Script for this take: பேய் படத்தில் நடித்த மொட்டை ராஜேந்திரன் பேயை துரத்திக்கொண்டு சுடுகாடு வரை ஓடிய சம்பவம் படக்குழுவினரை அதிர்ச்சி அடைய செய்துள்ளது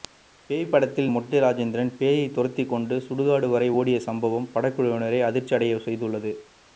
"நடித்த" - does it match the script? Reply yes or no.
no